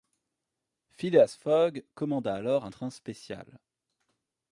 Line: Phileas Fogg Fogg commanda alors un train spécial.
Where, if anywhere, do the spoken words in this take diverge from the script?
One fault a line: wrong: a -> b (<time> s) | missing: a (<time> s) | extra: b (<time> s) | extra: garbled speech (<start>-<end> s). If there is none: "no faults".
missing: Fogg (1.9 s)